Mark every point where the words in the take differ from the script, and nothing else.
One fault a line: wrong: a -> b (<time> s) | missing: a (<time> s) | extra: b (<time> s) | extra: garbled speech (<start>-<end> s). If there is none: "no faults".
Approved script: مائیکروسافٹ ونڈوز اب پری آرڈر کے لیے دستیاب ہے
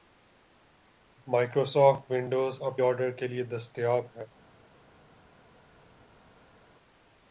missing: پری (2.8 s)